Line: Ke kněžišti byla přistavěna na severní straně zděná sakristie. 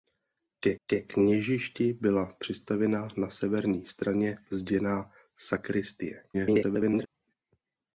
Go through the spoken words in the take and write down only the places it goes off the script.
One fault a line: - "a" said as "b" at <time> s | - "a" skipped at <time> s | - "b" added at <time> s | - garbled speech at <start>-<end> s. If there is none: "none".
- "ke" added at 0.9 s
- garbled speech at 6.3-7.1 s